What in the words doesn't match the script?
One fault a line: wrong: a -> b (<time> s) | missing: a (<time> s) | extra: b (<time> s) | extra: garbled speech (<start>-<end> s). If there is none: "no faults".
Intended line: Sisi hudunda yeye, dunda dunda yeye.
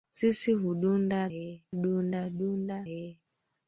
no faults